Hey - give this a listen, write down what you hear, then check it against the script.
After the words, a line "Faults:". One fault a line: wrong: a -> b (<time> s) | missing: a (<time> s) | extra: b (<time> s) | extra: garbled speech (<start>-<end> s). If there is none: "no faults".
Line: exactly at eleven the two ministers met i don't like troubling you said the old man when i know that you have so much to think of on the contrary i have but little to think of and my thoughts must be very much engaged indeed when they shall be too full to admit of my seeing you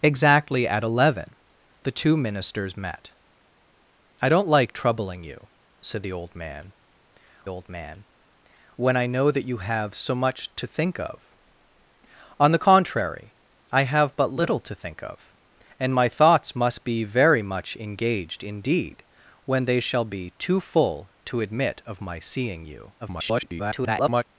exactly at eleven the two ministers met i don't like troubling you said the old man old man when i know that you have so much to think of on the contrary i have but little to think of and my thoughts must be very much engaged indeed when they shall be too full to admit of my seeing you [garbled]
Faults:
extra: old man (7.5 s)
extra: garbled speech (23.0-24.2 s)